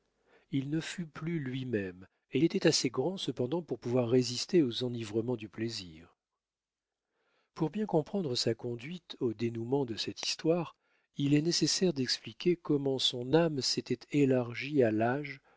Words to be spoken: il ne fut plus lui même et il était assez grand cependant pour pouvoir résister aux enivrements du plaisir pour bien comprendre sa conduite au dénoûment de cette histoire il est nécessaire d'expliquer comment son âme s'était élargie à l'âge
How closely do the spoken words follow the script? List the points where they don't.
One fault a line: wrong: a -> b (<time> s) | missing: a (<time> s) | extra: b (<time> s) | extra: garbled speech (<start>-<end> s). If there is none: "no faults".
missing: il (2.4 s)